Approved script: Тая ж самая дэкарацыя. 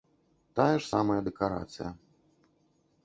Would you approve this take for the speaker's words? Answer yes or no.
yes